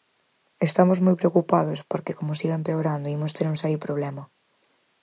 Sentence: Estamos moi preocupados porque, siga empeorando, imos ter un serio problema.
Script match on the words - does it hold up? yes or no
no